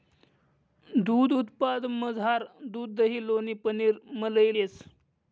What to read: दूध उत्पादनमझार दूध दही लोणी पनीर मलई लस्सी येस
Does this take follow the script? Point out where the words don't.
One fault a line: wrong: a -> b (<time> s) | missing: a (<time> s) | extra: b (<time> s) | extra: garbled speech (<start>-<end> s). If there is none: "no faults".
missing: लस्सी (4.5 s)